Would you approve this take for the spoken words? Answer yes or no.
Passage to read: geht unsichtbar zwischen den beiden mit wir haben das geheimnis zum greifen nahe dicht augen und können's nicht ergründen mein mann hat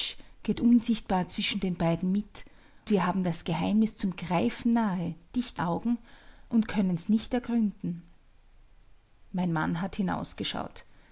yes